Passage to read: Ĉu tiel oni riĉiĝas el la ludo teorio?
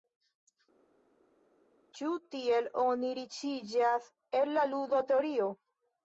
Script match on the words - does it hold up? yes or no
yes